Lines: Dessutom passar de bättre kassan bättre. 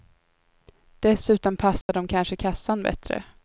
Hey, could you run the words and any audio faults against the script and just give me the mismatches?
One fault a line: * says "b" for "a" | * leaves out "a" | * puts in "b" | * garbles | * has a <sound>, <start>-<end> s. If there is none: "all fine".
* has a dropout, 1.8-1.9 s
* says "kanske" for "bättre"